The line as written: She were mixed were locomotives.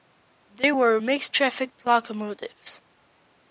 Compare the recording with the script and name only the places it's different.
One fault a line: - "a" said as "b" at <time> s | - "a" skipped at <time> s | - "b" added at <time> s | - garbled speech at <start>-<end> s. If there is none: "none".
- "She" said as "They" at 0.5 s
- "were" said as "traffic" at 1.3 s